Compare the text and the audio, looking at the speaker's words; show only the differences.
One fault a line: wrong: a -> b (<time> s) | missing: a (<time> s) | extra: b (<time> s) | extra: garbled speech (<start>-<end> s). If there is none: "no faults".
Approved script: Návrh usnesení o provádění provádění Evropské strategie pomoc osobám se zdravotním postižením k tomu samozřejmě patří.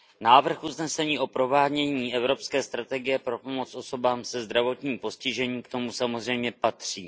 missing: provádění (2.1 s)
extra: pro (3.2 s)